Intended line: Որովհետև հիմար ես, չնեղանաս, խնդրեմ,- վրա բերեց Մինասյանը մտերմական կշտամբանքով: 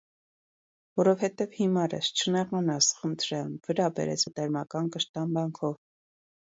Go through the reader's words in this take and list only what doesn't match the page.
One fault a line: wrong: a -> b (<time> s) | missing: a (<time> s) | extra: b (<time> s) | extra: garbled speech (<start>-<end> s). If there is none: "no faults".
missing: Մինասյանը (4.3 s)